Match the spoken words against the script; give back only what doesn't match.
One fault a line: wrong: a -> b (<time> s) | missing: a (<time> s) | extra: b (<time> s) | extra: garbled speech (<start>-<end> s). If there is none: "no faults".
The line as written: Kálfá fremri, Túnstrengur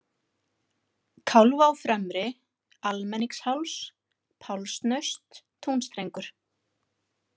extra: Almenningsháls Pálsnaust (2.9 s)